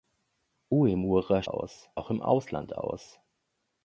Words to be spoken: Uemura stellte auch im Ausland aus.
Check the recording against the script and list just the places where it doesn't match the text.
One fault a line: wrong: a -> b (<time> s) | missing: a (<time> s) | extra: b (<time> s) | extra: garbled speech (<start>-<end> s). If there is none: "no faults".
wrong: stellte -> aus (1.5 s)